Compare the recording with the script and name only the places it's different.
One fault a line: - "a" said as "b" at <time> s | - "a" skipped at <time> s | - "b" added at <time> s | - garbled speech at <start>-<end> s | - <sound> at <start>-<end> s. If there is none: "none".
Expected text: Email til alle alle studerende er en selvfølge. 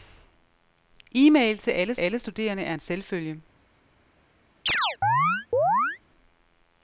- chirp at 4.7-6.0 s